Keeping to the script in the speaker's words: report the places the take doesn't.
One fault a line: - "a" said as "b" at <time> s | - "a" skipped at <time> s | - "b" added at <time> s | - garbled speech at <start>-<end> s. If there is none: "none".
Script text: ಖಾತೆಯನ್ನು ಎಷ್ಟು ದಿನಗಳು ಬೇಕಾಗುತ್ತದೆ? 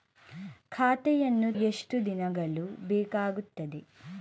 none